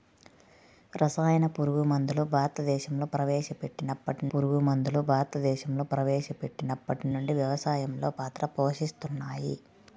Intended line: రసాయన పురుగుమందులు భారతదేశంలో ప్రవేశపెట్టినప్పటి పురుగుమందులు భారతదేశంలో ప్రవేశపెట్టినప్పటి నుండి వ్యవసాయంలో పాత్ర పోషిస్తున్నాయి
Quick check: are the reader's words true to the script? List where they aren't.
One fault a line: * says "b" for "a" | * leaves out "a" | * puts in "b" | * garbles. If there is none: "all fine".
all fine